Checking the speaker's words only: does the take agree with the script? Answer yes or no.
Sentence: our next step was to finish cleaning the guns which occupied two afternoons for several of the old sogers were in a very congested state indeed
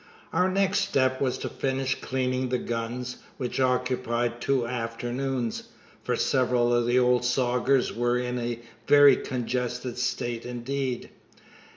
yes